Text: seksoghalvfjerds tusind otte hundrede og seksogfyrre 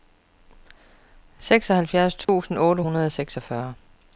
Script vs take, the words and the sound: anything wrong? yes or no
yes